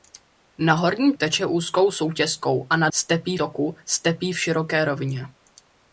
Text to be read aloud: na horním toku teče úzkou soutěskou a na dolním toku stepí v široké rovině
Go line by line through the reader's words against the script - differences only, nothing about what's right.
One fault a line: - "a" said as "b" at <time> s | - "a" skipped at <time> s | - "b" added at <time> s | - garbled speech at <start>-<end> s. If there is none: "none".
- "toku" skipped at 1.1 s
- "dolním" said as "stepí" at 2.9 s